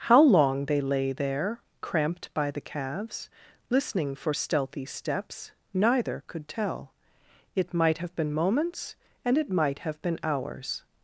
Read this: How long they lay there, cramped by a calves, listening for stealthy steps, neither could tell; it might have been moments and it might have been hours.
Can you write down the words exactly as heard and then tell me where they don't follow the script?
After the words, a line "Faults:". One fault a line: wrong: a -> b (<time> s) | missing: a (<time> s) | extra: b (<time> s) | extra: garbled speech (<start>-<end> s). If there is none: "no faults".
How long they lay there, cramped by the calves, listening for stealthy steps, neither could tell; it might have been moments and it might have been hours.
Faults:
wrong: a -> the (2.5 s)